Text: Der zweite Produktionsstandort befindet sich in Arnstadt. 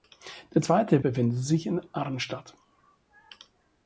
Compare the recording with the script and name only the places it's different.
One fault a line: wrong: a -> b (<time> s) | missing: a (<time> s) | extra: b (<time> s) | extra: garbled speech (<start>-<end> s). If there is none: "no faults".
missing: Produktionsstandort (1.0 s)